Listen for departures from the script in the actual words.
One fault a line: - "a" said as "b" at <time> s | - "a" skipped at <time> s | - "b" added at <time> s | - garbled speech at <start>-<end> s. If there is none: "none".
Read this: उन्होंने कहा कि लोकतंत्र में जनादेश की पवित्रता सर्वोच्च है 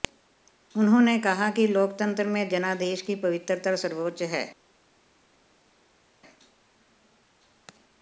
none